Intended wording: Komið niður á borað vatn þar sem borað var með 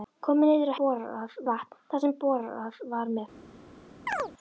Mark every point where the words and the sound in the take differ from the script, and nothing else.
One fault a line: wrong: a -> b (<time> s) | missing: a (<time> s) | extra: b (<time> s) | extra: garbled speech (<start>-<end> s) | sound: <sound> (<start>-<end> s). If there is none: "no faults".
sound: chirp (4.1-4.3 s)